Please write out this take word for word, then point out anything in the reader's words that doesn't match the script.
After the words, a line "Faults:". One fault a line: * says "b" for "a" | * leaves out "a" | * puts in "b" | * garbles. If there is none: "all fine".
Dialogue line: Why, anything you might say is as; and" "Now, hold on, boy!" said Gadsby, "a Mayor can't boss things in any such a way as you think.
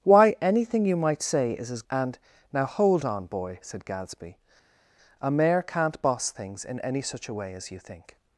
Why, anything you might say is as; and" "Now, hold on, boy!" said Gadsby, "a Mayor can't boss things in any such a way as you think.
Faults:
all fine